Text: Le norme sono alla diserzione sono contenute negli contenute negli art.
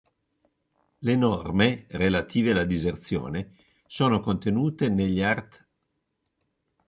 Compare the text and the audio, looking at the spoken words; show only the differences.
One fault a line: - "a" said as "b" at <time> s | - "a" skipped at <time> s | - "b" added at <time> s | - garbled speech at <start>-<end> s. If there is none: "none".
- "sono" said as "relative" at 1.9 s
- "contenute negli" skipped at 5.2 s